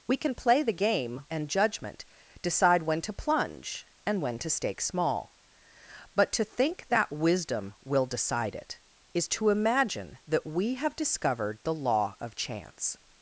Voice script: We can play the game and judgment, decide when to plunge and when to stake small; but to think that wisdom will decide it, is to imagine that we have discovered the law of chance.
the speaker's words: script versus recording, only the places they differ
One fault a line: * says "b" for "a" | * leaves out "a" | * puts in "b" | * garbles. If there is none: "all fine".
all fine